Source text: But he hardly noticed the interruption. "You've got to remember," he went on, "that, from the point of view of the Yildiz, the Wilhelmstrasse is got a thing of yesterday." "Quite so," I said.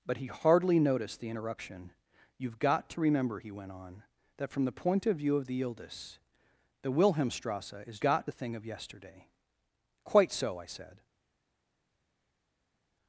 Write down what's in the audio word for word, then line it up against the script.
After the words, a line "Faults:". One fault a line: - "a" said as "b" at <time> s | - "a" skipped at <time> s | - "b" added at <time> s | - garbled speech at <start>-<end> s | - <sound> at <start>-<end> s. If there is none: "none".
But he hardly noticed the interruption. "You've got to remember," he went on, "that, from the point of view of the Yildiz, the Wilhelmstrasse is got a thing of yesterday." "Quite so," I said.
Faults:
none